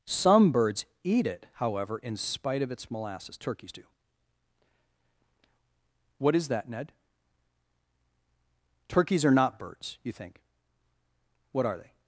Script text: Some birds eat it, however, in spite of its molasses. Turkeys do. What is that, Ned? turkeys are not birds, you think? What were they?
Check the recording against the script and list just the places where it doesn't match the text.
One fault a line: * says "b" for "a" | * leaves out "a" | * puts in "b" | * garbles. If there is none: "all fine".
* says "are" for "were"